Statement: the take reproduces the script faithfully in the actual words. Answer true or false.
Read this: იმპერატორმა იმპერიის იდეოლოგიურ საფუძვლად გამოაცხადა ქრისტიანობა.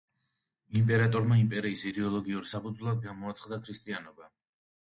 true